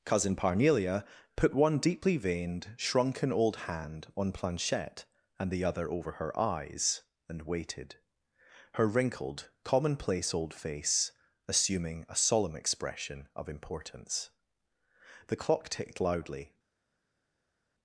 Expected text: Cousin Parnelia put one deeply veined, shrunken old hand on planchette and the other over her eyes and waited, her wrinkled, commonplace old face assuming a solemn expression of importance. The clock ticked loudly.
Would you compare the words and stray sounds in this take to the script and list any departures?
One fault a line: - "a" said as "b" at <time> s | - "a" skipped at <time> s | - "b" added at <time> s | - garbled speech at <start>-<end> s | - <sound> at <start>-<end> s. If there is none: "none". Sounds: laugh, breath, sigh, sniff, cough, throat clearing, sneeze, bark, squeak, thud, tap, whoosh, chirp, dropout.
none